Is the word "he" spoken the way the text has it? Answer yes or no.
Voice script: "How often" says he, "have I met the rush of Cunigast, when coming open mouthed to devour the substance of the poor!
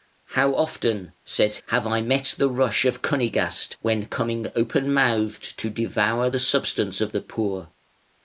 no